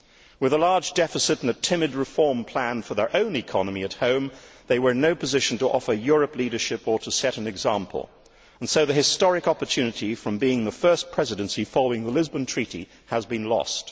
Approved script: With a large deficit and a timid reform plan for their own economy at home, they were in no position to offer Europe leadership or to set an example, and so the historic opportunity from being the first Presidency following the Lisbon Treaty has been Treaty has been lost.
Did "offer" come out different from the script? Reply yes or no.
no